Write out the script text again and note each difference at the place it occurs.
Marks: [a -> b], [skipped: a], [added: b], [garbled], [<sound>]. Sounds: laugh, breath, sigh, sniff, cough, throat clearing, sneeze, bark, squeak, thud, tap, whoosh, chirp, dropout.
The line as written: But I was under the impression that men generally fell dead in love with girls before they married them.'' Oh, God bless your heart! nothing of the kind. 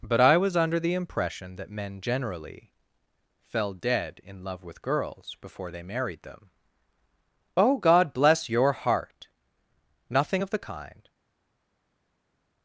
But I was under the impression that men generally fell dead in love with girls before they married them.'' Oh, God bless your heart! nothing of the kind.